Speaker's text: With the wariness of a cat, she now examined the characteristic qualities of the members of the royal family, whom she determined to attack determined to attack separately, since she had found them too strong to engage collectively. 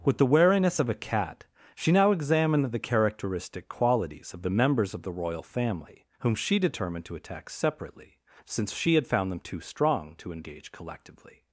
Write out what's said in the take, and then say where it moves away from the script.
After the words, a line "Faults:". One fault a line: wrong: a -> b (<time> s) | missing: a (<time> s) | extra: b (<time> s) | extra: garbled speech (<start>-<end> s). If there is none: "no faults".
With the wariness of a cat, she now examined the characteristic qualities of the members of the royal family, whom she determined to attack separately, since she had found them too strong to engage collectively.
Faults:
missing: determined to attack (7.5 s)